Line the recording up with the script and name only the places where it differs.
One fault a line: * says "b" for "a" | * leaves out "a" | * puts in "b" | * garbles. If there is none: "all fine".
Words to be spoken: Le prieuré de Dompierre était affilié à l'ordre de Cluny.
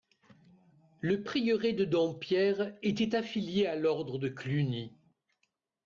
all fine